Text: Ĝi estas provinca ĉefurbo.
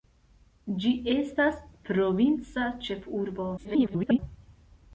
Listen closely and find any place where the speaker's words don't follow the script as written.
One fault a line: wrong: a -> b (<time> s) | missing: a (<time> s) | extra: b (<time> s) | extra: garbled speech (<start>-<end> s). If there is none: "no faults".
extra: garbled speech (3.6-4.2 s)